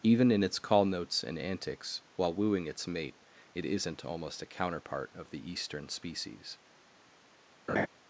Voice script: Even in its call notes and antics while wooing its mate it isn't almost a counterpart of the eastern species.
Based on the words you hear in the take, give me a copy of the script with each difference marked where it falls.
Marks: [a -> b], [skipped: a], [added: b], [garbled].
Even in its call notes and antics while wooing its mate it isn't almost a counterpart of the eastern species.